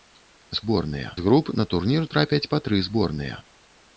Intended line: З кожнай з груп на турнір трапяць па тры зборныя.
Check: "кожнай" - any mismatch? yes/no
yes